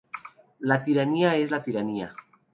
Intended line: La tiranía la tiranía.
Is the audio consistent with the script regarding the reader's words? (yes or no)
no